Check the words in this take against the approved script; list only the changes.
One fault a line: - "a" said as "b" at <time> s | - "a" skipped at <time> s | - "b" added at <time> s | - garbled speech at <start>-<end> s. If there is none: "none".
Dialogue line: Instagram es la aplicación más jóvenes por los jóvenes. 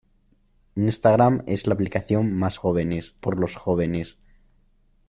none